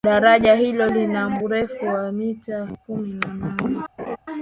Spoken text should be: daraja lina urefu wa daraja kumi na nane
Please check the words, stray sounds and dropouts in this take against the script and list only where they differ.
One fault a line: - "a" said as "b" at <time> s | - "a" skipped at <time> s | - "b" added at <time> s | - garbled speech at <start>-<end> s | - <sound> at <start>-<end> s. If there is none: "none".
- "hilo" added at 0.6 s
- "daraja" said as "mita" at 2.1 s
- laugh at 4.0-4.2 s